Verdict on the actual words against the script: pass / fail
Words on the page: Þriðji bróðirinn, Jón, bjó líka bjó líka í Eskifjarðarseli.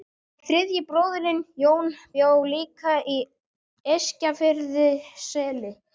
fail